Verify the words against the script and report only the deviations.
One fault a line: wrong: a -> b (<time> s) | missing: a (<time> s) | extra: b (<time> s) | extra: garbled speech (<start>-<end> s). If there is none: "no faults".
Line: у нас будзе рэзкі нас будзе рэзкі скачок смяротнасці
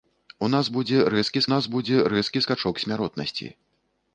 no faults